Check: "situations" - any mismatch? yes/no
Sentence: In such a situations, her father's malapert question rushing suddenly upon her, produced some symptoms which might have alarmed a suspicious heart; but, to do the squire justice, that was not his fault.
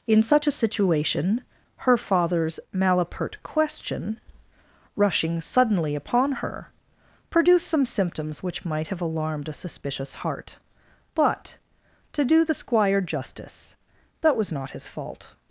yes